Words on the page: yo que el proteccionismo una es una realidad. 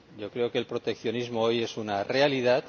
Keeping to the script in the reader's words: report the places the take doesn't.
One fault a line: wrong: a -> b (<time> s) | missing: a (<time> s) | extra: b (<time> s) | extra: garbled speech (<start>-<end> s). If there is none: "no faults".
extra: creo (0.3 s)
wrong: una -> hoy (1.4 s)